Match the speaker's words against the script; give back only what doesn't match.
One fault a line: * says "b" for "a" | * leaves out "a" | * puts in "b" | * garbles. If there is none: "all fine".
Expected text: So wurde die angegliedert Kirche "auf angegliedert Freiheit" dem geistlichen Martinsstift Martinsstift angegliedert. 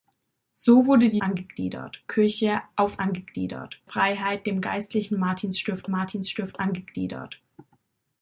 all fine